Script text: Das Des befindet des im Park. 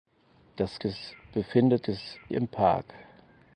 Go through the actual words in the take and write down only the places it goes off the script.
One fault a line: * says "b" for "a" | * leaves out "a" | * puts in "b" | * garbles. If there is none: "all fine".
all fine